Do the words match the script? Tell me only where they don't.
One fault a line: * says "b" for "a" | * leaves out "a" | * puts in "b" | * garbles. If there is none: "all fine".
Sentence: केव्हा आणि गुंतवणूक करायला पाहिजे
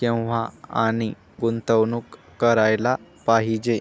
all fine